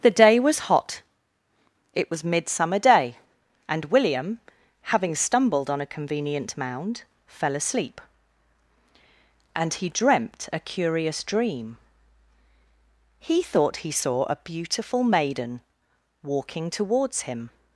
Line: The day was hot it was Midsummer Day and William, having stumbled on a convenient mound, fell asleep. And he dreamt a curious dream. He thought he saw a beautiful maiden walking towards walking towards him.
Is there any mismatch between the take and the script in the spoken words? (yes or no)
yes